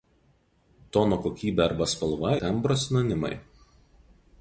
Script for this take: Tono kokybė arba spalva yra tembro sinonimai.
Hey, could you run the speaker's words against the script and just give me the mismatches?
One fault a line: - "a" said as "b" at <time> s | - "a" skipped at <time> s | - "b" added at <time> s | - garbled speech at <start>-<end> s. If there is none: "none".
- "yra" skipped at 2.3 s